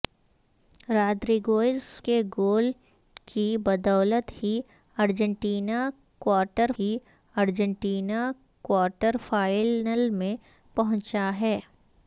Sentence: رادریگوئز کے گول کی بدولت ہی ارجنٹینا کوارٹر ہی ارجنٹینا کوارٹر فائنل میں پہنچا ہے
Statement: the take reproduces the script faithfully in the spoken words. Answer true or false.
true